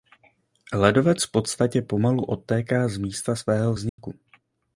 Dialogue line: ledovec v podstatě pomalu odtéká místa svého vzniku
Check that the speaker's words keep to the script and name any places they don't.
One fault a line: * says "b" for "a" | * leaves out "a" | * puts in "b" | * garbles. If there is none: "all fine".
* puts in "z"